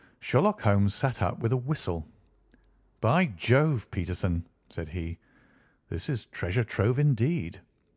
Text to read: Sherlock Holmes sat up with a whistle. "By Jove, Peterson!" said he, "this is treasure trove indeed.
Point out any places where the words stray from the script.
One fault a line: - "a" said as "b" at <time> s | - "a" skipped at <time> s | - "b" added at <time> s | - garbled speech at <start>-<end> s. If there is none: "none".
none